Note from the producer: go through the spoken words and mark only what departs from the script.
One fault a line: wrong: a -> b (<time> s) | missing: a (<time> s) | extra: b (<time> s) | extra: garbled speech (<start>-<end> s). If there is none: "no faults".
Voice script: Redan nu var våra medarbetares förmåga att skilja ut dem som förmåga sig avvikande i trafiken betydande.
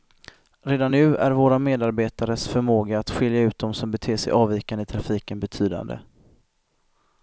wrong: var -> är (1.2 s)
wrong: förmåga -> beter (3.9 s)